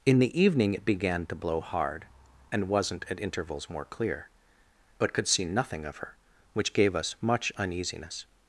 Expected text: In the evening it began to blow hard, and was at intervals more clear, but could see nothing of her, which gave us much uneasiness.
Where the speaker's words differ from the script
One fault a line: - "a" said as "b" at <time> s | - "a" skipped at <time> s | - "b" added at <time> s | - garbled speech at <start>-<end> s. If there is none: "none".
- "was" said as "wasn't" at 2.7 s